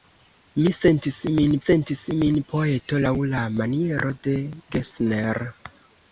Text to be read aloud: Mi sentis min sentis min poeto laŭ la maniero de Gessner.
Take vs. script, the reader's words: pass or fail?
pass